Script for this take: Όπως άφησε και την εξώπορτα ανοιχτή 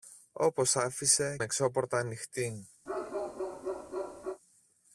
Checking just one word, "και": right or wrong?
wrong